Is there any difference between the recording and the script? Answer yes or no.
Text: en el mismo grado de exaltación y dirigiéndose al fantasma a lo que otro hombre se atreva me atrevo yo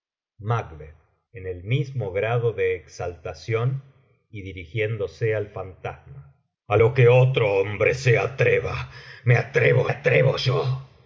yes